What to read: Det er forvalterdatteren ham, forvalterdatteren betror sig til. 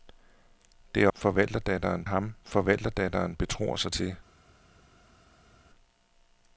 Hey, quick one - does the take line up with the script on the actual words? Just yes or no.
yes